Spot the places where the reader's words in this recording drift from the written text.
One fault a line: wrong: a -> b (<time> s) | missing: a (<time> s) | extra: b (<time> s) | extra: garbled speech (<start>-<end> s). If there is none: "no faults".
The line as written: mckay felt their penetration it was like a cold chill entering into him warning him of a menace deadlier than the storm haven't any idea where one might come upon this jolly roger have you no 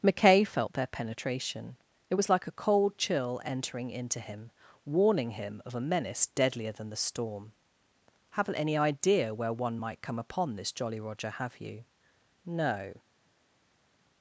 no faults